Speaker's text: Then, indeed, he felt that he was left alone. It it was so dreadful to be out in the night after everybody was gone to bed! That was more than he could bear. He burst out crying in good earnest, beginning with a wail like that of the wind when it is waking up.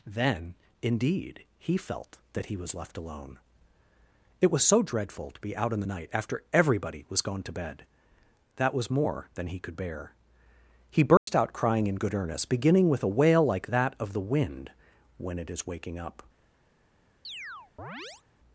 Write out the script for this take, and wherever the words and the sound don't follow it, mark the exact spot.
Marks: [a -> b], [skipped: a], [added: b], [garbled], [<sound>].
Then, indeed, he felt that he was left alone. It [skipped: it] was so dreadful to be out in the night after everybody was gone to bed! That was more than he could bear. He burst [dropout] out crying in good earnest, beginning with a wail like that of the wind when it is waking up. [chirp]